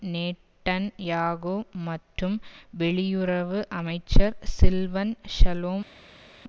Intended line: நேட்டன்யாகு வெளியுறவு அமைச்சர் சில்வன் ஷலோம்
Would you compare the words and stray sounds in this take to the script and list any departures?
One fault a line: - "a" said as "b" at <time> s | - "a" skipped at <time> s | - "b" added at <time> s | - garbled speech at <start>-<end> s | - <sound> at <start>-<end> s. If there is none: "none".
- "மற்றும்" added at 1.9 s